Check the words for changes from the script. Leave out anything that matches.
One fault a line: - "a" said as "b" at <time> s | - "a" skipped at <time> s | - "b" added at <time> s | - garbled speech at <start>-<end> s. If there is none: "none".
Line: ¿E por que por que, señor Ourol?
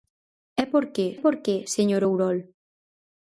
none